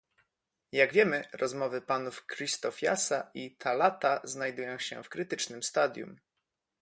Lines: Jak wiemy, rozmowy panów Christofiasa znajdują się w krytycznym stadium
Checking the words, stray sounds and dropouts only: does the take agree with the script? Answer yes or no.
no